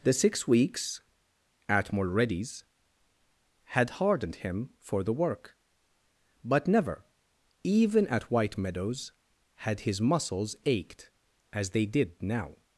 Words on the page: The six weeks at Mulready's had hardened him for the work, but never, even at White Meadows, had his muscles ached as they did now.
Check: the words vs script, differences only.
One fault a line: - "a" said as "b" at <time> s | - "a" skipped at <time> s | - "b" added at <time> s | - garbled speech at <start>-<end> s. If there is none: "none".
none